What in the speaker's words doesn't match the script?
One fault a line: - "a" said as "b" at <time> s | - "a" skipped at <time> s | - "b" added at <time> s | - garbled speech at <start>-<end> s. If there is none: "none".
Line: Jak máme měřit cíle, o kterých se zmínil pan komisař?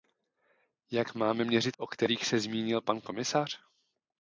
- "cíle" skipped at 1.8 s